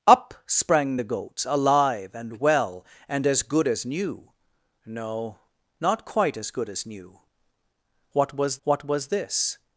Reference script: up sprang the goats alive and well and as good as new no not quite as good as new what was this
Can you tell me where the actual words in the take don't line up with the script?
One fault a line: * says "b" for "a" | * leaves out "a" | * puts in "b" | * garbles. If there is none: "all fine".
* puts in "what was"